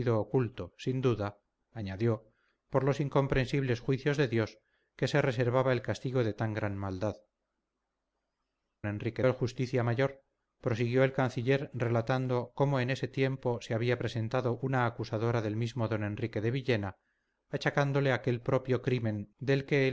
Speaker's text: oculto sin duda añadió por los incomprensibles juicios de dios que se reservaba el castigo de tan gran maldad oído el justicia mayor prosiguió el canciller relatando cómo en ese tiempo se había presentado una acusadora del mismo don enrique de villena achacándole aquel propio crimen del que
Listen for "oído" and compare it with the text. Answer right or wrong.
wrong